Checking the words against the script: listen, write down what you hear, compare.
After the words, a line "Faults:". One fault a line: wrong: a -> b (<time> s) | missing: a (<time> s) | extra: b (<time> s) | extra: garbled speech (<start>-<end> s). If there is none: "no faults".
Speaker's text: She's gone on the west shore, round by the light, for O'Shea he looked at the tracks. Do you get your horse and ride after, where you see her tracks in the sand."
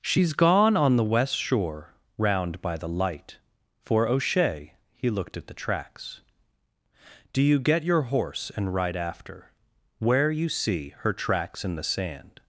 She's gone on the west shore, round by the light, for O'Shea he looked at the tracks. Do you get your horse and ride after, where you see her tracks in the sand."
Faults:
no faults